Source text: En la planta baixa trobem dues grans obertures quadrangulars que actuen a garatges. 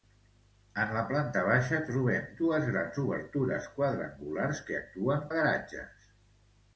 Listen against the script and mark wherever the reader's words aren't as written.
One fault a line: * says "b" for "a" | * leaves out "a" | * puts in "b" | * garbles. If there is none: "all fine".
all fine